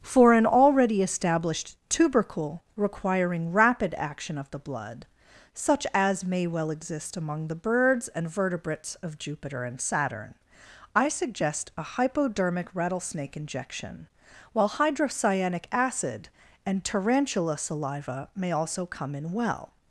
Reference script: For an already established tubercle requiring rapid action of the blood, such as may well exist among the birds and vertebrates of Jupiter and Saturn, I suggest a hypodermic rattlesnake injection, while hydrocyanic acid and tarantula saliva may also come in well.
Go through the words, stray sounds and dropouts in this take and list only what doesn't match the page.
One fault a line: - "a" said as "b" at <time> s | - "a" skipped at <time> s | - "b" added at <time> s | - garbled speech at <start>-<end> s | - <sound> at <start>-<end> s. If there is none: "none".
none